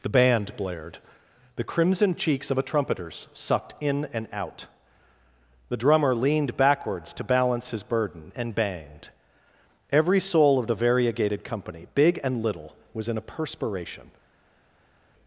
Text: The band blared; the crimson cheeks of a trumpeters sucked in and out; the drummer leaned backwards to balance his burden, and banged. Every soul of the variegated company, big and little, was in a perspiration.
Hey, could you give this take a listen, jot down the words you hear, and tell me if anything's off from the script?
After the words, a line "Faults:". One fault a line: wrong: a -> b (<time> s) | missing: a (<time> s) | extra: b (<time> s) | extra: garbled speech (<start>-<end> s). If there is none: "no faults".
The band blared; the crimson cheeks of a trumpeters sucked in and out; the drummer leaned backwards to balance his burden, and banged. Every soul of the variegated company, big and little, was in a perspiration.
Faults:
no faults